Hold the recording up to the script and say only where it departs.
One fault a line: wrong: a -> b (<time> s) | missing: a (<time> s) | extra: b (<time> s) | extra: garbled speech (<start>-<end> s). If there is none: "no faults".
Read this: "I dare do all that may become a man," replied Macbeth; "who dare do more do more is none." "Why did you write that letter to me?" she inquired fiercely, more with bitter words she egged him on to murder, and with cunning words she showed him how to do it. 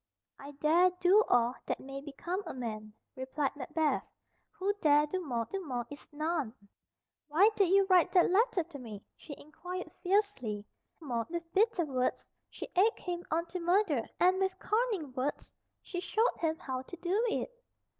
no faults